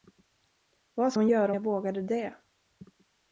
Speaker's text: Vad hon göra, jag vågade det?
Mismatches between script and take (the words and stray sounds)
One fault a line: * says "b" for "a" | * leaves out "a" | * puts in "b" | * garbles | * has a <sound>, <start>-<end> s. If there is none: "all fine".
all fine